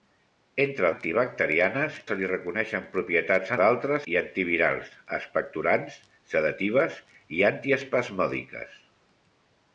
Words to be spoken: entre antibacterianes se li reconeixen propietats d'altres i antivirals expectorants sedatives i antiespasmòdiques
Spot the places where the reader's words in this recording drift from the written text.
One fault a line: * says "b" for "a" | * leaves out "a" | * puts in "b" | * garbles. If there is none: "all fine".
all fine